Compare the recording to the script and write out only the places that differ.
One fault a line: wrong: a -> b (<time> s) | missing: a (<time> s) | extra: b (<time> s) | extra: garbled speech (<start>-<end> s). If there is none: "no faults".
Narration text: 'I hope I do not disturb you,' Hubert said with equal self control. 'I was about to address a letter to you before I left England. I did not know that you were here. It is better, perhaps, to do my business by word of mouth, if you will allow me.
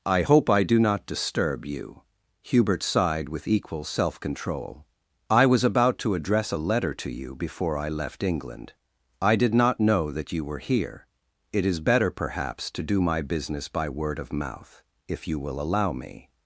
wrong: said -> sighed (2.8 s)